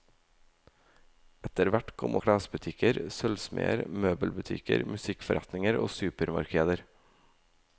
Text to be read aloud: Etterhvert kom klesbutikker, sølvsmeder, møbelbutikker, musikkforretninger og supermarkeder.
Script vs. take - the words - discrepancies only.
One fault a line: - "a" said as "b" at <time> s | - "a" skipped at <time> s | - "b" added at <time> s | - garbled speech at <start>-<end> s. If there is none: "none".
none